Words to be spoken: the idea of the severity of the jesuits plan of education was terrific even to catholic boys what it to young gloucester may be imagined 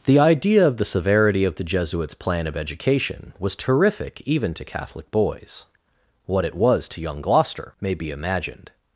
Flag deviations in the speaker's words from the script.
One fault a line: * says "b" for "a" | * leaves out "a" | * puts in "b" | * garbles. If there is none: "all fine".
* puts in "was"